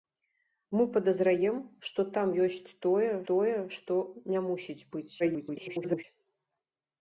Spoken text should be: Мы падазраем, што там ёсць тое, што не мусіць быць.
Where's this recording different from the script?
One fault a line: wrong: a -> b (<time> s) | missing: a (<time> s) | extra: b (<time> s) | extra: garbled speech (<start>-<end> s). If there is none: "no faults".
extra: тое (3.3 s)
extra: garbled speech (5.2-6.0 s)